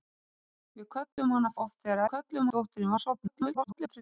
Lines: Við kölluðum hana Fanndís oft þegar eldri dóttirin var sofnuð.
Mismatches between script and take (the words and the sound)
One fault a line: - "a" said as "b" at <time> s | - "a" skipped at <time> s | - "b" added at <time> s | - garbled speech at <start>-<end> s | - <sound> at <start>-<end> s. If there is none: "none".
- dropout at 1.1-1.2 s
- "Fanndís" skipped at 1.5 s
- "eldri" said as "kölluðum" at 2.1 s
- garbled speech at 3.3-4.0 s